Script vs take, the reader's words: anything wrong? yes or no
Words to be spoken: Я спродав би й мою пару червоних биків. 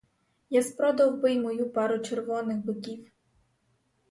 no